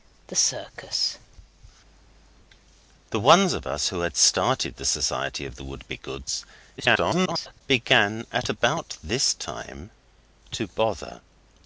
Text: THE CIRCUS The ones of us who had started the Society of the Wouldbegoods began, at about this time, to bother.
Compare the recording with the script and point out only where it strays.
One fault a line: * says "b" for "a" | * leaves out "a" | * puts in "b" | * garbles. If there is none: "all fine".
* garbles